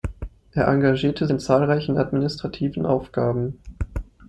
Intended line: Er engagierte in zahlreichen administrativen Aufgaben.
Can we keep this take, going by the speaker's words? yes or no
yes